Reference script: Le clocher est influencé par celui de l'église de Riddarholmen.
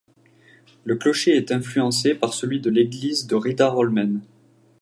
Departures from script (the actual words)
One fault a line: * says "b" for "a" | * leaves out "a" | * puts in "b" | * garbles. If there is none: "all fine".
all fine